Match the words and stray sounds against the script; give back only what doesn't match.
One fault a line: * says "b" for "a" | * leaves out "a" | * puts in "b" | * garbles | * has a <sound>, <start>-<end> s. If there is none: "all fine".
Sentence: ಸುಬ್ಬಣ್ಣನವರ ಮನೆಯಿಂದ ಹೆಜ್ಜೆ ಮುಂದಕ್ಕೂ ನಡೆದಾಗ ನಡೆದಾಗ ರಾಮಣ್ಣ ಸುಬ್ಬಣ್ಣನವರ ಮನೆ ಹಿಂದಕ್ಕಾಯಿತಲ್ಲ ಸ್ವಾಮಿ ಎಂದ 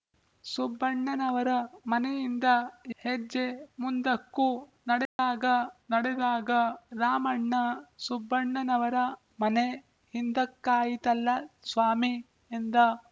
* has a dropout, 5.1-5.2 s